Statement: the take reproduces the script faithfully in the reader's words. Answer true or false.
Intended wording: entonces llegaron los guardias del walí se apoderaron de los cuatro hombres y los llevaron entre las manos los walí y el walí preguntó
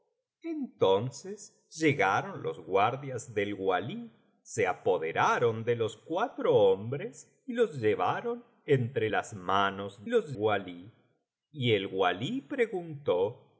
true